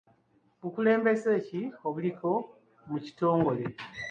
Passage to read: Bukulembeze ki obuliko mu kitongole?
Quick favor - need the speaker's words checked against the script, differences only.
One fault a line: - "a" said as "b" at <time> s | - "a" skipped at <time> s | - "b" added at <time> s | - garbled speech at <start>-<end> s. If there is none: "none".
none